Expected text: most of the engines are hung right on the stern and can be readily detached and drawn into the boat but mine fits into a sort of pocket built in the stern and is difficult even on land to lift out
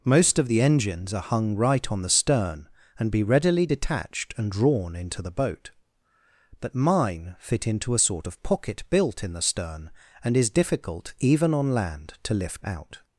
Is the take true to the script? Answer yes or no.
no